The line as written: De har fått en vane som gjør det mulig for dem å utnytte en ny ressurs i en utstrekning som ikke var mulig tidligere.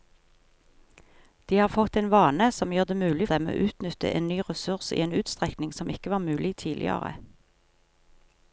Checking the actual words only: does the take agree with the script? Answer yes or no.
no